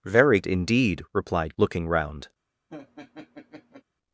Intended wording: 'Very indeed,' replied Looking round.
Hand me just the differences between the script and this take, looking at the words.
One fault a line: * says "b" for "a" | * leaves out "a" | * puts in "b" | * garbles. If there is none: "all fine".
all fine